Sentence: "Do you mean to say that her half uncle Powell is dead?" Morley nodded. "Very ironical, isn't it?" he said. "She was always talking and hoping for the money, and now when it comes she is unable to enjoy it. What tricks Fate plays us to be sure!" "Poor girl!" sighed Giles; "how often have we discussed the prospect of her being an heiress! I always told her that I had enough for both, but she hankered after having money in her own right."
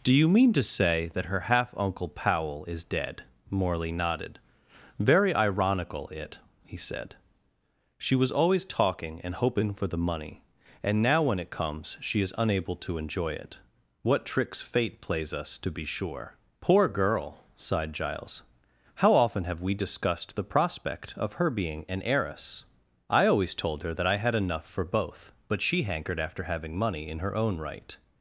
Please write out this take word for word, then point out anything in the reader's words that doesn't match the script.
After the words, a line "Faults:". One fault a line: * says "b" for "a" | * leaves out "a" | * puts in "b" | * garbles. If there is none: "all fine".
"Do you mean to say that her half uncle Powell is dead?" Morley nodded. "Very ironical, it?" he said. "She was always talking and hoping for the money, and now when it comes she is unable to enjoy it. What tricks Fate plays us to be sure!" "Poor girl!" sighed Giles; "how often have we discussed the prospect of her being an heiress! I always told her that I had enough for both, but she hankered after having money in her own right."
Faults:
* leaves out "isn't"